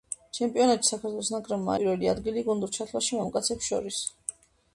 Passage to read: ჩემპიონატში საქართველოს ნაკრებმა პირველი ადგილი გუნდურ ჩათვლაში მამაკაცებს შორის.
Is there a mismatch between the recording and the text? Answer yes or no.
no